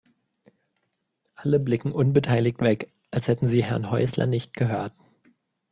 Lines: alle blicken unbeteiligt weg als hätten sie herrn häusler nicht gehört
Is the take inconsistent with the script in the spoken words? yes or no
no